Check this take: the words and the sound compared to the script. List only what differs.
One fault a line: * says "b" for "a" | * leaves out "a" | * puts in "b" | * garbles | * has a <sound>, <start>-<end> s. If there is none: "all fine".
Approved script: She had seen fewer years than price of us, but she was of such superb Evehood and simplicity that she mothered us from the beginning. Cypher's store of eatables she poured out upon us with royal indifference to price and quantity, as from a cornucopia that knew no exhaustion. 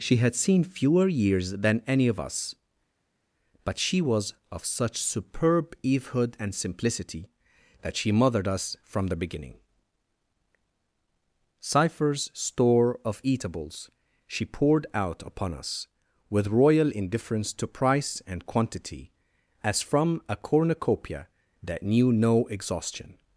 * says "any" for "price"